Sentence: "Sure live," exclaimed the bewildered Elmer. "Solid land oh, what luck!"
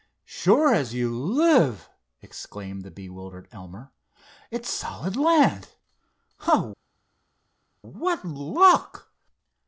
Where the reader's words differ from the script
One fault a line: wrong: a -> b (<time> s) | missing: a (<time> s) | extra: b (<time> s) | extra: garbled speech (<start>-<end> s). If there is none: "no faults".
extra: as you (0.7 s)
extra: It's (4.5 s)